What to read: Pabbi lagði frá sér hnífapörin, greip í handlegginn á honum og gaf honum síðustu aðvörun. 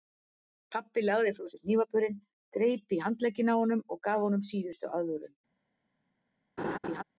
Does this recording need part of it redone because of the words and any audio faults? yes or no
yes